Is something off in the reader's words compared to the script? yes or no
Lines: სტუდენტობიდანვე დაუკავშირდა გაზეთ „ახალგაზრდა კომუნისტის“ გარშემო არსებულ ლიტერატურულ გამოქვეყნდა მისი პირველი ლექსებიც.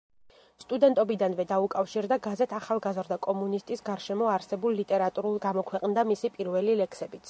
no